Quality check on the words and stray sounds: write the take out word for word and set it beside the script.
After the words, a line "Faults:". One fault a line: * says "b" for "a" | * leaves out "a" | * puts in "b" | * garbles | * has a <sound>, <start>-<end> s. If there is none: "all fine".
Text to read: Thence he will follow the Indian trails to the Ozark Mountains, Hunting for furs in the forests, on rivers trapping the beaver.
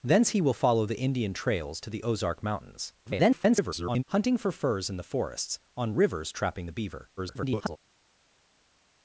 Thence he will follow the Indian trails to the Ozark Mountains, [garbled] Hunting for furs in the forests, on rivers trapping the beaver. [garbled]
Faults:
* garbles
* garbles